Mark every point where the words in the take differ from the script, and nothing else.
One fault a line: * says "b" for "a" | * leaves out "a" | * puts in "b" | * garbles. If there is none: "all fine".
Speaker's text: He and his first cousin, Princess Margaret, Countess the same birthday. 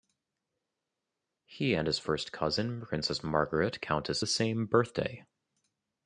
all fine